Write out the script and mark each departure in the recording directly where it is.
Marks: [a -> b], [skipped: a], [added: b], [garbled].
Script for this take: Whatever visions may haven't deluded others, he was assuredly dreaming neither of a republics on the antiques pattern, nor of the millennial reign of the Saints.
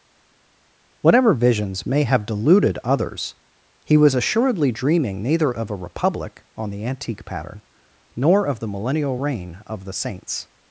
Whatever visions may [haven't -> have] deluded others, he was assuredly dreaming neither of a [republics -> republic] on the [antiques -> antique] pattern, nor of the millennial reign of the Saints.